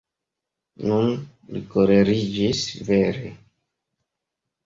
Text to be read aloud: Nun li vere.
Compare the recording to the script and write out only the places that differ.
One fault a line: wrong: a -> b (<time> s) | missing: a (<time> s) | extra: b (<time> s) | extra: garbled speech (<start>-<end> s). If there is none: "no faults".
extra: koleriĝis (1.8 s)